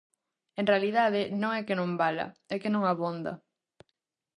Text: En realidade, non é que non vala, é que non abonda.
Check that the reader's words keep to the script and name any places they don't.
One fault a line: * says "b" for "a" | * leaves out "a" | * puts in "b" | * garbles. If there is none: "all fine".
all fine